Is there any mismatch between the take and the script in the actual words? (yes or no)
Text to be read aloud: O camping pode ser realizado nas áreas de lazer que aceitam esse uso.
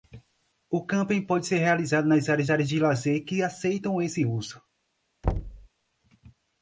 yes